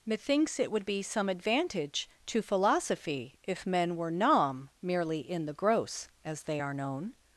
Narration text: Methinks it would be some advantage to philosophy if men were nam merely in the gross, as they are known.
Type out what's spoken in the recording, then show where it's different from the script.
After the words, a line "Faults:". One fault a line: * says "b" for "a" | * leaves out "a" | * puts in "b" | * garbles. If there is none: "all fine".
Methinks it would be some advantage to philosophy if men were nam merely in the gross, as they are known.
Faults:
all fine